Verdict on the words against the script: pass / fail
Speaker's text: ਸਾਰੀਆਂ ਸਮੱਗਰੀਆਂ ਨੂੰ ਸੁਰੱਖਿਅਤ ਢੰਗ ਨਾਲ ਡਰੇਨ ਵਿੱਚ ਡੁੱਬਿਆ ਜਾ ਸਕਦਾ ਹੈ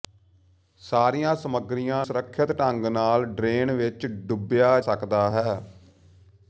fail